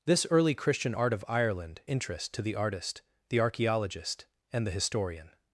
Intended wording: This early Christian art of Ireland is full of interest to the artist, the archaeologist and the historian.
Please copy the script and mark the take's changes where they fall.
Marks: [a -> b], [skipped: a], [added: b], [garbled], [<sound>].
This early Christian art of Ireland [skipped: is full of] interest to the artist, the archaeologist and the historian.